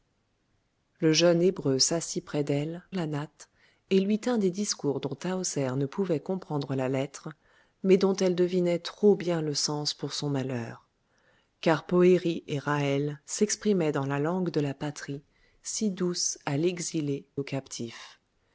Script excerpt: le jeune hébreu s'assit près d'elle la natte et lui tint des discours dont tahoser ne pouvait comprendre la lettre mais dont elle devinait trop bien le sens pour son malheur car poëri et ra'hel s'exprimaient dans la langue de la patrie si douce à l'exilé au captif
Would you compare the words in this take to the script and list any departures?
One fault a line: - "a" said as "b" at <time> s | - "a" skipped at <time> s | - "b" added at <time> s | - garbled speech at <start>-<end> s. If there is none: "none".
none